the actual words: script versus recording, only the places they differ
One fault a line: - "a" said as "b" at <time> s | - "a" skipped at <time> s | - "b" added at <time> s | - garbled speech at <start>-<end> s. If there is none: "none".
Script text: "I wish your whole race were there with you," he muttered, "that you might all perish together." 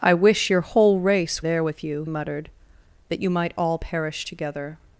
- "were" skipped at 1.4 s
- "he" skipped at 2.0 s